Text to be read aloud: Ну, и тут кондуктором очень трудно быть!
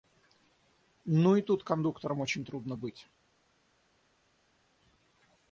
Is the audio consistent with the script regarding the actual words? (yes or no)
yes